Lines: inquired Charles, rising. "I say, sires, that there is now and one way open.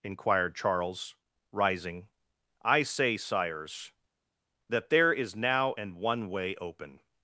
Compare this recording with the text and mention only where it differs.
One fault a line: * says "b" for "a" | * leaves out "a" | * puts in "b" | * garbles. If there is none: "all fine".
all fine